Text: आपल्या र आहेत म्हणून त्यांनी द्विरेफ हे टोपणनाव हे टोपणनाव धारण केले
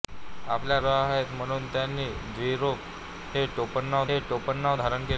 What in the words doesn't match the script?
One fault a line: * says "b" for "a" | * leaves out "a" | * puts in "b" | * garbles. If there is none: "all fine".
all fine